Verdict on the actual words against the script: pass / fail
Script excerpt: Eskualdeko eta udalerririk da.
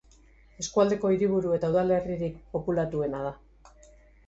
fail